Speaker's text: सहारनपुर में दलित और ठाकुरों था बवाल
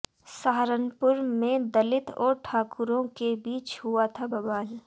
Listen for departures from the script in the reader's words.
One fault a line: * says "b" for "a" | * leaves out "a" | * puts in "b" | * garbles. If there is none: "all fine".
* puts in "के बीच हुआ"